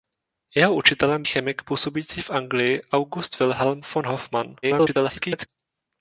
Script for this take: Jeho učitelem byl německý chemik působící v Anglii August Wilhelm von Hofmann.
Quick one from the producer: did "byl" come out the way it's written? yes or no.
no